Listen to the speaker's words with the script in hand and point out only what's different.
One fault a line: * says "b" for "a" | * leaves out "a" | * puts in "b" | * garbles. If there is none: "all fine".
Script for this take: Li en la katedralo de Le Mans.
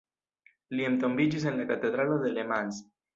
* puts in "entombiĝis"